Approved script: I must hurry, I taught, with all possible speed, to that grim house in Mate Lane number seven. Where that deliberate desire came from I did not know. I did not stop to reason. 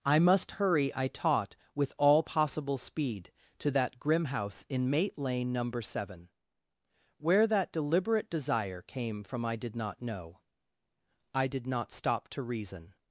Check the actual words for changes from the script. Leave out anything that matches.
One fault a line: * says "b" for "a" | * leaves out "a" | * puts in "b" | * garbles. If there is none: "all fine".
all fine